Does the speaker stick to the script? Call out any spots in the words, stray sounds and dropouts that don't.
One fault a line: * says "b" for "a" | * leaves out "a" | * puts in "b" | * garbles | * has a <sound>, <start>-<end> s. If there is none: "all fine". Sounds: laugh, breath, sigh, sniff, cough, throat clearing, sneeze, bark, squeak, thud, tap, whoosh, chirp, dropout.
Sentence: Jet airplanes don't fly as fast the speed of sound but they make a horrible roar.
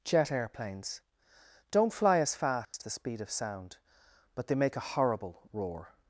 * has a dropout, 2.6-2.7 s